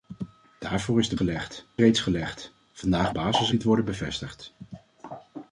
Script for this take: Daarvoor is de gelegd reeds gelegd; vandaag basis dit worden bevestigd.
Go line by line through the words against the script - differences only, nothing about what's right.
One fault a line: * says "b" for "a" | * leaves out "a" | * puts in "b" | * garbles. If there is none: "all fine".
all fine